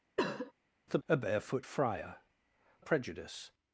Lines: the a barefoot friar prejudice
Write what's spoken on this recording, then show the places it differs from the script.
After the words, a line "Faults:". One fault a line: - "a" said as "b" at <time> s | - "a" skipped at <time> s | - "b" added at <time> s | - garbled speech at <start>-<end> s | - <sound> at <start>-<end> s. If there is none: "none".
the a barefoot friar prejudice
Faults:
- cough at 0.2-0.5 s